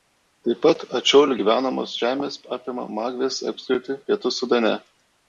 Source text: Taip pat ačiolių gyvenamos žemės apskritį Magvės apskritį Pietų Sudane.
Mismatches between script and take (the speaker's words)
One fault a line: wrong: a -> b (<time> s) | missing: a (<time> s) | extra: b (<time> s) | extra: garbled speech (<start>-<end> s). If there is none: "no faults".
wrong: apskritį -> apima (2.6 s)